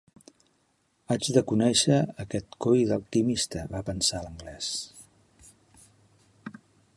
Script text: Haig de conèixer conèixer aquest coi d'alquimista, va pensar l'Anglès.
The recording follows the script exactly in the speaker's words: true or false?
false